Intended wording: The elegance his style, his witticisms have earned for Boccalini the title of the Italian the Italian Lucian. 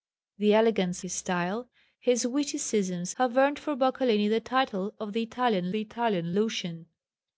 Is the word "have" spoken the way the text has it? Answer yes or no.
yes